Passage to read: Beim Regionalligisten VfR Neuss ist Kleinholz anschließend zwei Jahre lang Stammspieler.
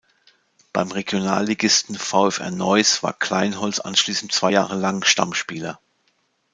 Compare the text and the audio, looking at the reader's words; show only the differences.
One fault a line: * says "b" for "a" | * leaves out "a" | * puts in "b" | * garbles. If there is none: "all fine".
* says "war" for "ist"